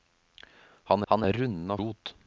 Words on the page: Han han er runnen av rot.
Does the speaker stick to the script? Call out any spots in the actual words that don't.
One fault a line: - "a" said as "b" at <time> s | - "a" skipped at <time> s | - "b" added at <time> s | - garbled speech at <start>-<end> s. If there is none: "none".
none